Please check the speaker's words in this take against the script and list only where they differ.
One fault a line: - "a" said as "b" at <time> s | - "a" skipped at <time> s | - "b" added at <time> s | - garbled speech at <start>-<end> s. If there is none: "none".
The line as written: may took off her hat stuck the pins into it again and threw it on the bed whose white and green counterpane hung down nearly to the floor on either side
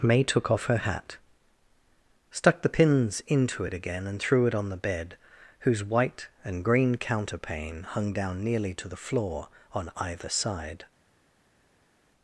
none